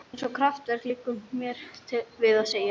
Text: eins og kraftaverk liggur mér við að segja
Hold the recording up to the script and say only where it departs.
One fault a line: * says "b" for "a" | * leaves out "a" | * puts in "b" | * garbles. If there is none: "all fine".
all fine